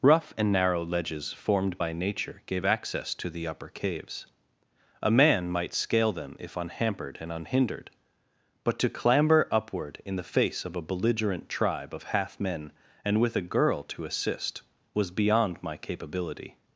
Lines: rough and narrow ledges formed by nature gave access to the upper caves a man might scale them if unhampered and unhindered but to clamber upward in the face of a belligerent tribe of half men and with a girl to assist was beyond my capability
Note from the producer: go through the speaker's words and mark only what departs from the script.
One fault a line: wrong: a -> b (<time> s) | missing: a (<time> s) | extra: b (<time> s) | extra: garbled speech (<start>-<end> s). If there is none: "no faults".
no faults